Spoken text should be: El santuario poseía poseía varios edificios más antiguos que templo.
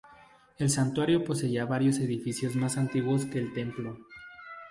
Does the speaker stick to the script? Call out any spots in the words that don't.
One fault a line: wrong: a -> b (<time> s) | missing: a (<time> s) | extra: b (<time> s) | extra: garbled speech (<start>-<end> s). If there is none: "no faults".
missing: poseía (1.6 s)
extra: el (3.4 s)